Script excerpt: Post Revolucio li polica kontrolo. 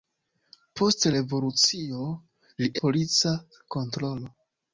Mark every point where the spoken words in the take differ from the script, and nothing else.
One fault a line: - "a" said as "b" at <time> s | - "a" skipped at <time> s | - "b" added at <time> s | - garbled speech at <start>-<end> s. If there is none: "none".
none